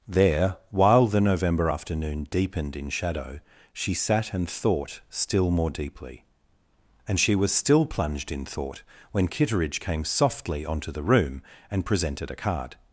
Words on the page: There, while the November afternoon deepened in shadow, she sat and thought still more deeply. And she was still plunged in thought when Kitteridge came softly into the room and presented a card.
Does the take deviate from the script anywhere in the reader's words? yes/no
yes